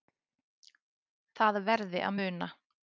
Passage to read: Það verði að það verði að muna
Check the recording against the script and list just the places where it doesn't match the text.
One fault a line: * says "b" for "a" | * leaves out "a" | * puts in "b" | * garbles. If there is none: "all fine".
* leaves out "það verði að"